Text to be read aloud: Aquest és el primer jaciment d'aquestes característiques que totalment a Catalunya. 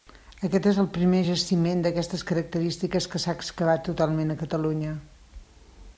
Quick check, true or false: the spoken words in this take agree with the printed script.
false